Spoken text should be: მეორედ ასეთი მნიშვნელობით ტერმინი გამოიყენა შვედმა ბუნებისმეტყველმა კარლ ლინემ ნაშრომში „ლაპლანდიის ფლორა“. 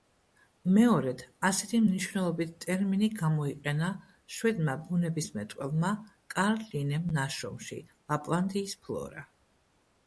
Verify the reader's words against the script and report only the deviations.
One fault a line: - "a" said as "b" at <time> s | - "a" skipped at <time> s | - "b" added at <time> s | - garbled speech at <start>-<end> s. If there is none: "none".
none